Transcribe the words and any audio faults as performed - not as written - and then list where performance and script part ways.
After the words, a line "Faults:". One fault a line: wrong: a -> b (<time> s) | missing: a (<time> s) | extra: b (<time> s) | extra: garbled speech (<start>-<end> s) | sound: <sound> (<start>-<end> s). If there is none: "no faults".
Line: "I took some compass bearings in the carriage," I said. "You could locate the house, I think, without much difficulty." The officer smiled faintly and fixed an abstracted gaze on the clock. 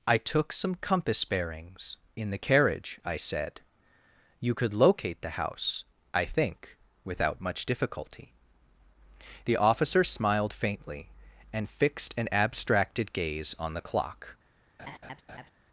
"I took some compass bearings in the carriage," I said. "You could locate the house, I think, without much difficulty." The officer smiled faintly and fixed an abstracted gaze on the clock.
Faults:
sound: laugh (14.8-15.5 s)